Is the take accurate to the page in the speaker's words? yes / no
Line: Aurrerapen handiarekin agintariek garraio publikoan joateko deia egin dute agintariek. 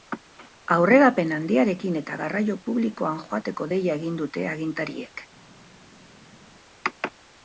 no